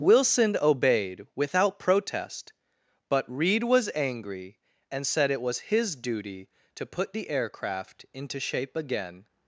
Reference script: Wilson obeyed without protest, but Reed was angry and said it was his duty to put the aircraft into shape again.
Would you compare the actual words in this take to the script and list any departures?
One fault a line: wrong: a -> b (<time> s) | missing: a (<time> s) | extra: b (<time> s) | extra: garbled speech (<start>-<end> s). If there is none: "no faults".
no faults